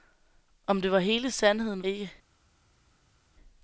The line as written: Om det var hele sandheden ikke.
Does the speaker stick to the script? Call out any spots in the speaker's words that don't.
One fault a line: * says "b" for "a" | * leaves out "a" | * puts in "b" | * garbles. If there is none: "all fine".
all fine